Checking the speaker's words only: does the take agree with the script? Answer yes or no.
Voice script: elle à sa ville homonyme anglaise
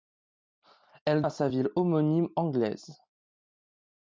yes